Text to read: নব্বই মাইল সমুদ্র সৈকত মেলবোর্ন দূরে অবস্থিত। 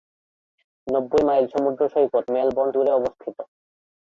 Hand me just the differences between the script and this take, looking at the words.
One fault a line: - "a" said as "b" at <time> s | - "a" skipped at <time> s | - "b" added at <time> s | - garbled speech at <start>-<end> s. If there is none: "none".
none